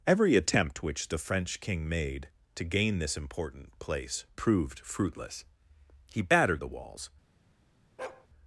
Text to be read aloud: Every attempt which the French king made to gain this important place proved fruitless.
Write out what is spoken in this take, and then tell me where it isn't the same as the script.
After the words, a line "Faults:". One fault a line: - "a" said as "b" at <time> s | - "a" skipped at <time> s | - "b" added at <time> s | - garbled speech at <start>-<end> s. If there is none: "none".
Every attempt which the French king made to gain this important place proved fruitless. He battered the walls
Faults:
- "He battered the walls" added at 6.1 s